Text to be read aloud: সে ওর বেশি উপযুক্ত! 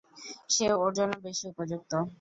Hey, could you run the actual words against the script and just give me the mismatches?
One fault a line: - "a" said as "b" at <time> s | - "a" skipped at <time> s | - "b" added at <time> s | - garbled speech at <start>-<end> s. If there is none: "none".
- "জন্য" added at 1.0 s